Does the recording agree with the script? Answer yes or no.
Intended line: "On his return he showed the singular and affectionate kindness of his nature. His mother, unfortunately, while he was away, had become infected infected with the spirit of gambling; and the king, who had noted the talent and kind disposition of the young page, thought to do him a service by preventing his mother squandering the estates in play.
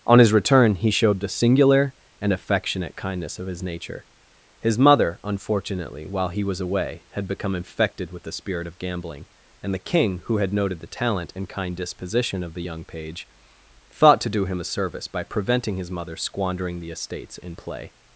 no